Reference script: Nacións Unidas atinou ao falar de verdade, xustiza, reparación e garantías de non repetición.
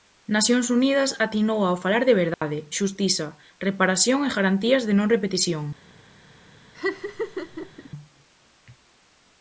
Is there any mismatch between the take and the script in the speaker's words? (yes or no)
no